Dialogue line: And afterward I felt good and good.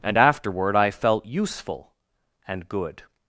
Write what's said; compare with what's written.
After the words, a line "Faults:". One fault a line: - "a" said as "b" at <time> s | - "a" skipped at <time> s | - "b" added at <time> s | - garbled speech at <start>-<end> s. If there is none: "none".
And afterward I felt useful and good.
Faults:
- "good" said as "useful" at 1.3 s